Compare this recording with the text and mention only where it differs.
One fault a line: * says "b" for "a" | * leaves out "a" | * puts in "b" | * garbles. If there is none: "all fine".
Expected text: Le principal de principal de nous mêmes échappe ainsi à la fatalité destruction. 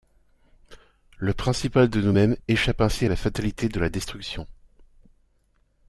* leaves out "principal de"
* puts in "de la"